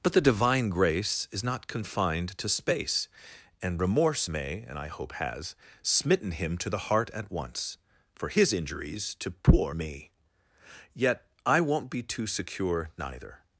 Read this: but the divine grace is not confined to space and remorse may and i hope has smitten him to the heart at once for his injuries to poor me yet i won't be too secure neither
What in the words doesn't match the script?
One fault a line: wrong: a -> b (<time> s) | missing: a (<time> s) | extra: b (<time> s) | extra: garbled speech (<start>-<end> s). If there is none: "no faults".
no faults